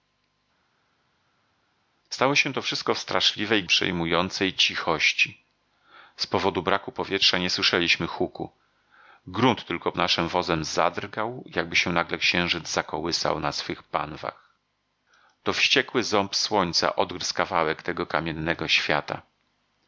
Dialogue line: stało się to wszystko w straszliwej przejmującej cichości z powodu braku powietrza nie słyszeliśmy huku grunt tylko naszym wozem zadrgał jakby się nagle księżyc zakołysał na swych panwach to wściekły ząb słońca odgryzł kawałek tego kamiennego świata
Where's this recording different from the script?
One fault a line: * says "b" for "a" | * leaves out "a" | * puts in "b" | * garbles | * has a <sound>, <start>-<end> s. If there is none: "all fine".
all fine